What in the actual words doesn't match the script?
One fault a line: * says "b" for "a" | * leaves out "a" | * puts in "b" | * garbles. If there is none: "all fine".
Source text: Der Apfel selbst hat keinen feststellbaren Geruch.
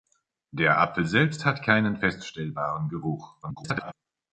* garbles